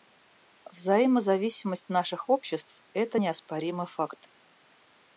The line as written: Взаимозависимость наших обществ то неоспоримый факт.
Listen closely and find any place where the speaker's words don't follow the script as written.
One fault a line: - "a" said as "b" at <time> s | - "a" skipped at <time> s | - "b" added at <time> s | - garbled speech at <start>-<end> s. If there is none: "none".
- "то" said as "это" at 2.9 s